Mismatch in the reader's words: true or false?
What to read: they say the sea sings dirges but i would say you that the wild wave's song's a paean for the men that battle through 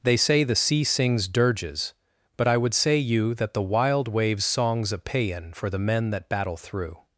false